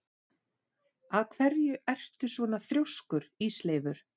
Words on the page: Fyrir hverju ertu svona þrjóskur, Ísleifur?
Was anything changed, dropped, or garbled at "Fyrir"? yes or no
yes